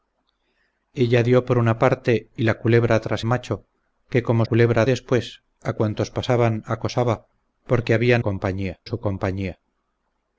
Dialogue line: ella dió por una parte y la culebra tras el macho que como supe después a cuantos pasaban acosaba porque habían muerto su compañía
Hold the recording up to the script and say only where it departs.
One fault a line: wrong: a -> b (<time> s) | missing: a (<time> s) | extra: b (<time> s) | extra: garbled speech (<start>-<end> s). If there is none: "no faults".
missing: el (3.2 s)
wrong: supe -> culebra (4.4 s)
wrong: muerto -> compañía (8.2 s)